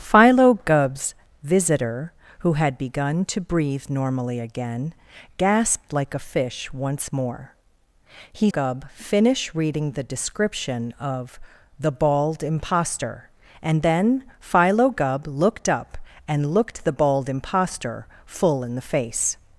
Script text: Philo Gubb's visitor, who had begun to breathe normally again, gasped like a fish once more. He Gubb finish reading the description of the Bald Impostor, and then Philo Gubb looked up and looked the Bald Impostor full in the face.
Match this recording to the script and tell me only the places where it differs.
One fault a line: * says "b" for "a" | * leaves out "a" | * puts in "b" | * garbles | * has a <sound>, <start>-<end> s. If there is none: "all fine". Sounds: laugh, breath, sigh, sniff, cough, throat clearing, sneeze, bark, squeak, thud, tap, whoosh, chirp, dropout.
all fine